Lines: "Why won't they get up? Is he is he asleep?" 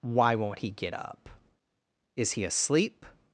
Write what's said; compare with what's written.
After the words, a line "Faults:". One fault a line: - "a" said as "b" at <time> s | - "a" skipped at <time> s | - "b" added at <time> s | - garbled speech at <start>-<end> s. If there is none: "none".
"Why won't he get up? Is he asleep?"
Faults:
- "they" said as "he" at 0.6 s
- "is he" skipped at 2.4 s